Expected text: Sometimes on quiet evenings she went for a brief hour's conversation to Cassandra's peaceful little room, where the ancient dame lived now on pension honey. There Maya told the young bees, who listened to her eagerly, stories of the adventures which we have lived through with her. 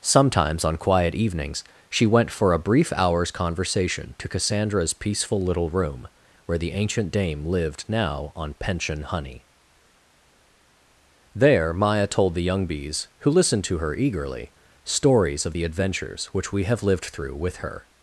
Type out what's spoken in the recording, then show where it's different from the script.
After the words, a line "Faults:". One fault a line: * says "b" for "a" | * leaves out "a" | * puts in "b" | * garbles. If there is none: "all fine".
Sometimes on quiet evenings she went for a brief hour's conversation to Cassandra's peaceful little room, where the ancient dame lived now on pension honey. There Maya told the young bees, who listened to her eagerly, stories of the adventures which we have lived through with her.
Faults:
all fine